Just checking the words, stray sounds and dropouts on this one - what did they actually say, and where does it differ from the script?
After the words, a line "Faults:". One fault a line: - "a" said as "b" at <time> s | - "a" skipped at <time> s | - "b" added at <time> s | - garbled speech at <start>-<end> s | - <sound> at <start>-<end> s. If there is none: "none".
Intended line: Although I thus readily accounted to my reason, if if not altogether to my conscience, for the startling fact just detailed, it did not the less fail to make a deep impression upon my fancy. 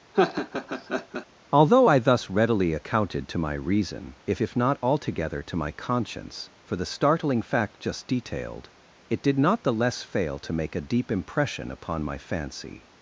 Although I thus readily accounted to my reason, if if not altogether to my conscience, for the startling fact just detailed, it did not the less fail to make a deep impression upon my fancy.
Faults:
- laugh at 0.1-1.3 s